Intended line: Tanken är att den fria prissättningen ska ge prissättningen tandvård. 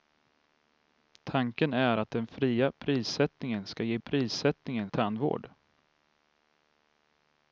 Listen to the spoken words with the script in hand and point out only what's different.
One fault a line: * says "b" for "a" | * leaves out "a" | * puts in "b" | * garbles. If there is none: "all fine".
all fine